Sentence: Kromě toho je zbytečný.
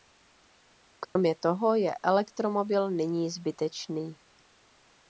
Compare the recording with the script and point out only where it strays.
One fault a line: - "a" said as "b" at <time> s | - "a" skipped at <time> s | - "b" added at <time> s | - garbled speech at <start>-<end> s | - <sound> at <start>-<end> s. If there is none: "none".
- dropout at 1.0-1.2 s
- "elektromobil nyní" added at 2.0 s